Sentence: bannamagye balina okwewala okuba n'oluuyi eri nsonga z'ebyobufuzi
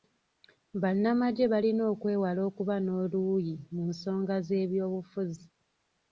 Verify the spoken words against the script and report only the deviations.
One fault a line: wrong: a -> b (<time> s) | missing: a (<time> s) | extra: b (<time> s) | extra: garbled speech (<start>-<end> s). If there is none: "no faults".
wrong: eri -> mu (3.7 s)